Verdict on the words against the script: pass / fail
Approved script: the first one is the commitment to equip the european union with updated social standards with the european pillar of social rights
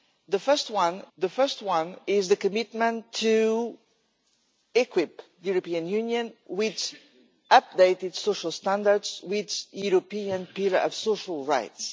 fail